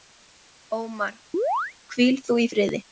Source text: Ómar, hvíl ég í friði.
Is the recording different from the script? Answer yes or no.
yes